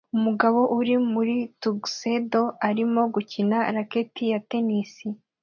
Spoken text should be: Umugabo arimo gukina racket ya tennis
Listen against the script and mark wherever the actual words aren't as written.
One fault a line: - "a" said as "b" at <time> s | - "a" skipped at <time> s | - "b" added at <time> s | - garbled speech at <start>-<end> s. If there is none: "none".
- "uri muri tuxedo" added at 0.8 s